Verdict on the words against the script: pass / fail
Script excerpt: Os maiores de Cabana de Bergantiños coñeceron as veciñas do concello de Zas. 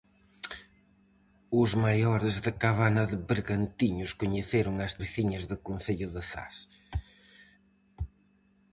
pass